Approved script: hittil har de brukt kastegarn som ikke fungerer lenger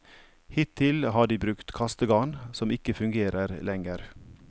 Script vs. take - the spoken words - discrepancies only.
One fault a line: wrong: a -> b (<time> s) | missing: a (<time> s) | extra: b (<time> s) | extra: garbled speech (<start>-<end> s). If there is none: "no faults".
no faults